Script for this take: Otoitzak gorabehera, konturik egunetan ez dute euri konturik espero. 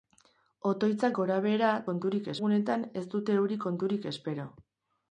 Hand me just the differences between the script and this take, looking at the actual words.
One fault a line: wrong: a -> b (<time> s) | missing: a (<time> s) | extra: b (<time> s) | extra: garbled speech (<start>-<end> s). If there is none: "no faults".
no faults